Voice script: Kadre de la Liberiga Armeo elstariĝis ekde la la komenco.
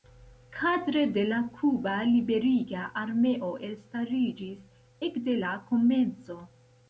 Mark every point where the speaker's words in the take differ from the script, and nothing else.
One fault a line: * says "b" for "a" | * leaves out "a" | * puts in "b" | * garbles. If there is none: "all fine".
* puts in "Kuba"
* leaves out "la"